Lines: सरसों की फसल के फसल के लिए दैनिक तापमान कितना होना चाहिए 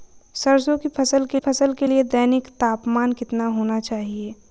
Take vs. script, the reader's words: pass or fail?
pass